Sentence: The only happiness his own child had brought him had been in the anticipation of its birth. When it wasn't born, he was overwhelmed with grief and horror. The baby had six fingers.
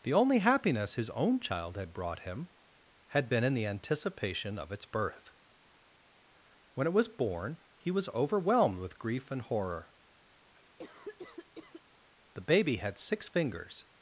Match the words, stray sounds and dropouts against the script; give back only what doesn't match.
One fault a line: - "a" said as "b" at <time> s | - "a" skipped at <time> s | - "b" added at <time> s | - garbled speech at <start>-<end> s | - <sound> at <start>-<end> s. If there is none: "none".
- "wasn't" said as "was" at 6.9 s
- cough at 10.5-11.8 s